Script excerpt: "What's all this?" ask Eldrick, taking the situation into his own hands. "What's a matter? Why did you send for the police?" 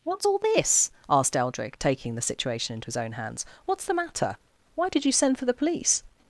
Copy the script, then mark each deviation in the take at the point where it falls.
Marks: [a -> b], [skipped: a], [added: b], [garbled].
"What's all this?" [ask -> asked] Eldrick, taking the situation into his own hands. "What's [a -> the] matter? Why did you send for the police?"